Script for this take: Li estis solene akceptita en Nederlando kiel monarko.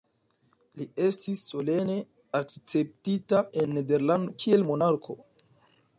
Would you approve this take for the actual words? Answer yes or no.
yes